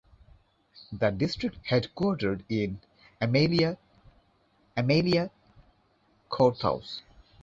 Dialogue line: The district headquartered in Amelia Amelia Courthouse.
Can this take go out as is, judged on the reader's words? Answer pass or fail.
pass